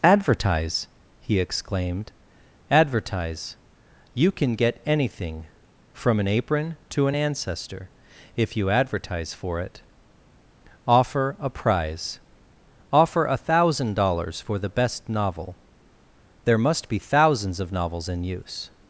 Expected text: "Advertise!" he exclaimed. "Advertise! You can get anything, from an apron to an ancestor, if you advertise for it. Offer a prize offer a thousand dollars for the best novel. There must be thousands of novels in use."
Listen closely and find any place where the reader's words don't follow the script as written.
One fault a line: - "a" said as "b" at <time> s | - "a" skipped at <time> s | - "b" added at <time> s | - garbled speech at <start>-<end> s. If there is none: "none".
none